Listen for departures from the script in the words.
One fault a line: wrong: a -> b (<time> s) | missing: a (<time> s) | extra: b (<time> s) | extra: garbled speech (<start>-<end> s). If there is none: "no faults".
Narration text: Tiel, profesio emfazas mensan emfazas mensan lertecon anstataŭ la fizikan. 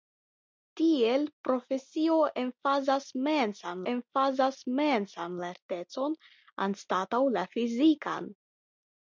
no faults